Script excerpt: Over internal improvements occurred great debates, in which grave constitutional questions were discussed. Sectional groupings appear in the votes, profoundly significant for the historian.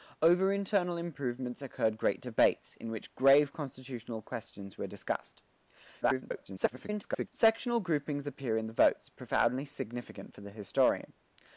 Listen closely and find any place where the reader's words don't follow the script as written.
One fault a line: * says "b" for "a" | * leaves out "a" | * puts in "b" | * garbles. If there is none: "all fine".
* garbles